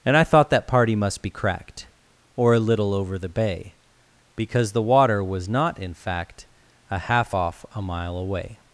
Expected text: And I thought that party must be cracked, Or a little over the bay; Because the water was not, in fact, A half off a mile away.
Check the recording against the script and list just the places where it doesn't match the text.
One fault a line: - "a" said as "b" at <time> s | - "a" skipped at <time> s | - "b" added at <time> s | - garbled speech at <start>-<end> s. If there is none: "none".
none